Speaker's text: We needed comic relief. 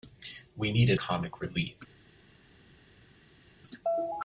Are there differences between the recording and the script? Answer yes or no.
no